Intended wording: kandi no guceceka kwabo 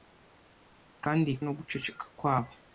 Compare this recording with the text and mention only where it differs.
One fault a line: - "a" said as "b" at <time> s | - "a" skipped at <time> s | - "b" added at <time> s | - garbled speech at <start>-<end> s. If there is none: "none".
none